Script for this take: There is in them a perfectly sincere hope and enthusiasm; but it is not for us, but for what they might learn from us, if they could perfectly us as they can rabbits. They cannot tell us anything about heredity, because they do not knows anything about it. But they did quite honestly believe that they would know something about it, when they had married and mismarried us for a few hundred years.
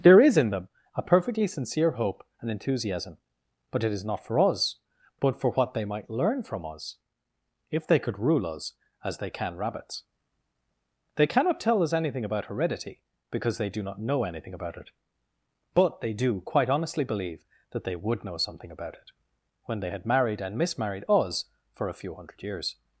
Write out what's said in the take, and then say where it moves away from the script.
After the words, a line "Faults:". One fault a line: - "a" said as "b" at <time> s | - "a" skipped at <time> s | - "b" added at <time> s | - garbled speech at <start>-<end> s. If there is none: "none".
There is in them a perfectly sincere hope and enthusiasm; but it is not for us, but for what they might learn from us, if they could rule us as they can rabbits. They cannot tell us anything about heredity, because they do not know anything about it. But they do quite honestly believe that they would know something about it, when they had married and mismarried us for a few hundred years.
Faults:
- "perfectly" said as "rule" at 8.2 s
- "knows" said as "know" at 14.0 s
- "did" said as "do" at 16.1 s